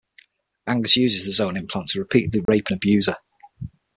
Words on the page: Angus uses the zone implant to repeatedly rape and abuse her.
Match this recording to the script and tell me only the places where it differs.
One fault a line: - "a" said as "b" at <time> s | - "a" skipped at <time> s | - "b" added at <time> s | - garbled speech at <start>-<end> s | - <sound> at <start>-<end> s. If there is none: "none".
- dropout at 2.5-2.5 s